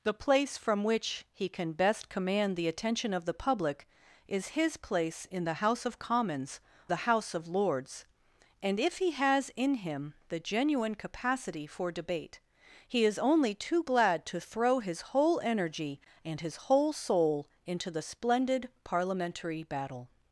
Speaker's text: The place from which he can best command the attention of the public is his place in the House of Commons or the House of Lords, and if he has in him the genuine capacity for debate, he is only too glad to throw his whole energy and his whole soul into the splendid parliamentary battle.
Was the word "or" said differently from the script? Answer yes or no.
yes